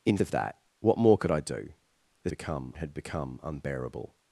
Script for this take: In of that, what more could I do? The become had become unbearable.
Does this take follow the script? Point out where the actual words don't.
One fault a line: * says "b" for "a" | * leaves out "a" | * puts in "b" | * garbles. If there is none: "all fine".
all fine